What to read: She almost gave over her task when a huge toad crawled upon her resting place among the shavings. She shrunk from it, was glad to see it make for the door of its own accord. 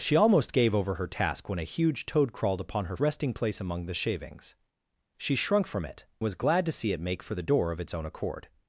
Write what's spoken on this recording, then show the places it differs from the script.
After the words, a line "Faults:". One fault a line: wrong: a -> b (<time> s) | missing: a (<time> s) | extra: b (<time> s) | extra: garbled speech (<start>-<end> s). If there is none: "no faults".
She almost gave over her task when a huge toad crawled upon her resting place among the shavings. She shrunk from it, was glad to see it make for the door of its own accord.
Faults:
no faults